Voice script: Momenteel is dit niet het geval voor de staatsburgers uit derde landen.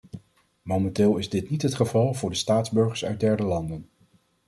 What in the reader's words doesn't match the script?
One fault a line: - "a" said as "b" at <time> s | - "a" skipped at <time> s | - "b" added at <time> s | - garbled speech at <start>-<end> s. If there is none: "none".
none